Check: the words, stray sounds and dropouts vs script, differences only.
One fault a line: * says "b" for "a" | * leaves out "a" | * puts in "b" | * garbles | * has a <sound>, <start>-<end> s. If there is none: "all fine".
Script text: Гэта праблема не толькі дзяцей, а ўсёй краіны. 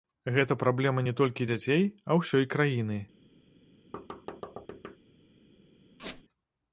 * has a thud, 3.9-5.0 s
* has a squeak, 6.0-6.2 s